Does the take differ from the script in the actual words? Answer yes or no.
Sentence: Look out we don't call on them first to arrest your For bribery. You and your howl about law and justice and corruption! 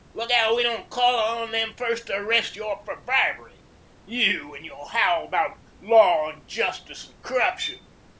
no